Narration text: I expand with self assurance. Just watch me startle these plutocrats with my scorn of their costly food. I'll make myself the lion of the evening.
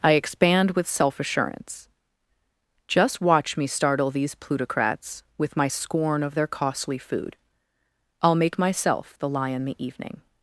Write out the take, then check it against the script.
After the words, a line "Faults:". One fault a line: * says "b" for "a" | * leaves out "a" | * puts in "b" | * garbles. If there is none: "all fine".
I expand with self assurance. Just watch me startle these plutocrats with my scorn of their costly food. I'll make myself the lion the evening.
Faults:
* leaves out "of"